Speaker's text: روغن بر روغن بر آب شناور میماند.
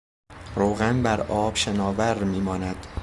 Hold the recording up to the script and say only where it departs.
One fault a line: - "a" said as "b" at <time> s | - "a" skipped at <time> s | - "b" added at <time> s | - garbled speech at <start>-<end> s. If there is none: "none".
- "روغن بر" skipped at 1.2 s